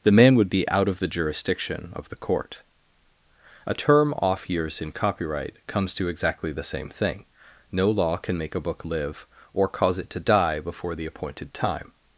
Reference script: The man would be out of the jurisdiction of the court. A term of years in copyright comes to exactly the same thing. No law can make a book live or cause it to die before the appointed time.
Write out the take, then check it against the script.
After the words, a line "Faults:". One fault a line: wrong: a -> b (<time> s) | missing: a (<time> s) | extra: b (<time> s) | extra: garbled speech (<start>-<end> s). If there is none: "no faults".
The man would be out of the jurisdiction of the court. A term off years in copyright comes to exactly the same thing. No law can make a book live or cause it to die before the appointed time.
Faults:
wrong: of -> off (4.2 s)